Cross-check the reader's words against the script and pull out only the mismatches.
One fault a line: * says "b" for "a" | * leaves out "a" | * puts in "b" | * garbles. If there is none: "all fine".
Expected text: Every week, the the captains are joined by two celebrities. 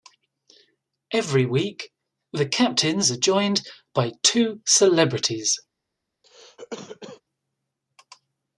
* leaves out "the"